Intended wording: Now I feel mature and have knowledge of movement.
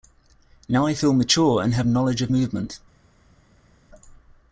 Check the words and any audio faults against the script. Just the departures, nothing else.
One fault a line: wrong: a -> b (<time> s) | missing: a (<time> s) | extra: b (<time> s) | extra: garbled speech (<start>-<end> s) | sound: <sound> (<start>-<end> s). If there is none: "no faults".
no faults